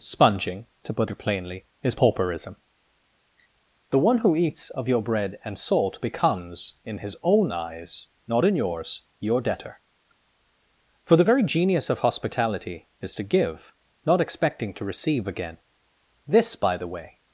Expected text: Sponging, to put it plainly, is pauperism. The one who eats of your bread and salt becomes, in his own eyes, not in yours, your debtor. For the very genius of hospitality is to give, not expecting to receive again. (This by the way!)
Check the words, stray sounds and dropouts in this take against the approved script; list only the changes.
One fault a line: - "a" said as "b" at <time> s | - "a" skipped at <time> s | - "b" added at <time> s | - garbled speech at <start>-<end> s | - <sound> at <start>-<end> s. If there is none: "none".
none